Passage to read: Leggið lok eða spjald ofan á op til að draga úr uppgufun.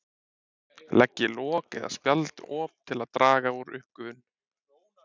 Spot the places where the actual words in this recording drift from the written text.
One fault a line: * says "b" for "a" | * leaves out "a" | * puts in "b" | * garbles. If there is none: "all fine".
* leaves out "ofan"